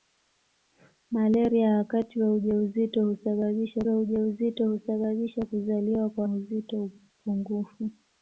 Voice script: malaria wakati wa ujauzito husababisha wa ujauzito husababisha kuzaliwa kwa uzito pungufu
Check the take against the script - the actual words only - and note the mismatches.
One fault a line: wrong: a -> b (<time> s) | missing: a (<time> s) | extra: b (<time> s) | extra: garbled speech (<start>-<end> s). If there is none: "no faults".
no faults